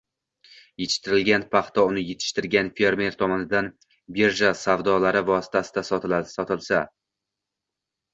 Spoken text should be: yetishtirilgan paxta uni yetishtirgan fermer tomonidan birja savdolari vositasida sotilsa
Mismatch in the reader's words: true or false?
false